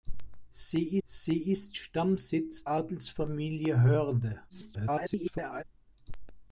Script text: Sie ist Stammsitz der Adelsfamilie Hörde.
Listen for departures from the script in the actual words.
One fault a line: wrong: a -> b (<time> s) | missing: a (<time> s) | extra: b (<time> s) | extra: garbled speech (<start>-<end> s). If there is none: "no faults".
extra: sie (1.0 s)
missing: der (2.7 s)
extra: garbled speech (4.5-5.6 s)